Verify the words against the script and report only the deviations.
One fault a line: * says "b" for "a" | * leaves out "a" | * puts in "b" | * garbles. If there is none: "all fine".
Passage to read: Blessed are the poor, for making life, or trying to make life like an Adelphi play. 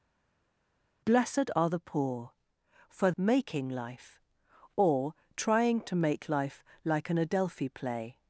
all fine